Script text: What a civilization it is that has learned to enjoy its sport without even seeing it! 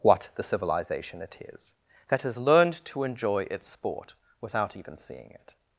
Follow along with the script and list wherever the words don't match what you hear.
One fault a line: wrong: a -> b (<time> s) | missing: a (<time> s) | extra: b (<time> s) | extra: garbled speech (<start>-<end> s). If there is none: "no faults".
wrong: a -> the (0.3 s)